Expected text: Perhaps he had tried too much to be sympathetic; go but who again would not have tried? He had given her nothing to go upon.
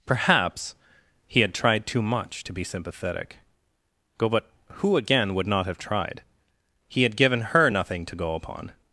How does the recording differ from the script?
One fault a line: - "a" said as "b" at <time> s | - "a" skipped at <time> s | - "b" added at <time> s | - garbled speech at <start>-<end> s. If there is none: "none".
none